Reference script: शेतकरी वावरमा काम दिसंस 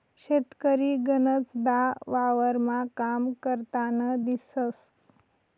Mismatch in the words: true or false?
true